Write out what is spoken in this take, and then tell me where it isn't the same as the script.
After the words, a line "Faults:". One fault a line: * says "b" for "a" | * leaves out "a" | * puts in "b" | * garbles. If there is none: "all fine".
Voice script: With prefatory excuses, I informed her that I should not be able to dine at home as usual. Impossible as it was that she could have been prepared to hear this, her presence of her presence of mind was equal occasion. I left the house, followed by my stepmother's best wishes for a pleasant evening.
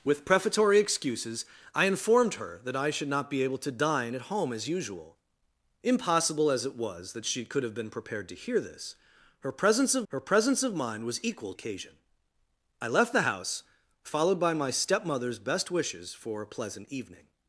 With prefatory excuses, I informed her that I should not be able to dine at home as usual. Impossible as it was that she could have been prepared to hear this, her presence of her presence of mind was equal occasion. I left the house, followed by my stepmother's best wishes for a pleasant evening.
Faults:
all fine